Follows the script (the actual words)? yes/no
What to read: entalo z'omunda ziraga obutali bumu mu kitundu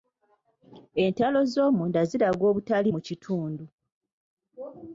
no